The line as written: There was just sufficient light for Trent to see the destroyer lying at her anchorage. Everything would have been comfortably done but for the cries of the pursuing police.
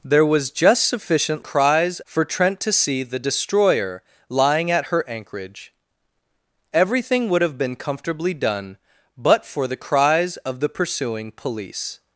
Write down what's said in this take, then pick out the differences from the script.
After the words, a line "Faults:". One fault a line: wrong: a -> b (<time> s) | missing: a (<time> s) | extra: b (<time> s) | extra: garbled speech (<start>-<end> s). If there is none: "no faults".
There was just sufficient cries for Trent to see the destroyer lying at her anchorage. Everything would have been comfortably done but for the cries of the pursuing police.
Faults:
wrong: light -> cries (1.4 s)